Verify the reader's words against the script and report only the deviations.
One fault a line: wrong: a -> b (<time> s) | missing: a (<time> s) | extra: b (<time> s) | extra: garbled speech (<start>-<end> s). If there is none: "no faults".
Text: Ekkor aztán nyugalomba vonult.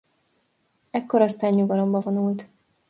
no faults